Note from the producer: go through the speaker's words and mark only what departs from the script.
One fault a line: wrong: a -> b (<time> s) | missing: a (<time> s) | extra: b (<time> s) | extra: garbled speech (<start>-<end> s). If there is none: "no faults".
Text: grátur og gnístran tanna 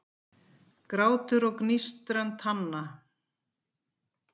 no faults